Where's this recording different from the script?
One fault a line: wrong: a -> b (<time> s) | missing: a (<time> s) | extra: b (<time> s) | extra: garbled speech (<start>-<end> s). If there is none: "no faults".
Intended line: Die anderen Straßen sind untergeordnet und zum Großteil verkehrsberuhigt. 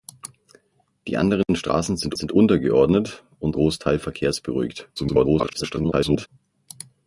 extra: sind (2.1 s)
missing: zum (3.6 s)
extra: garbled speech (5.0-6.3 s)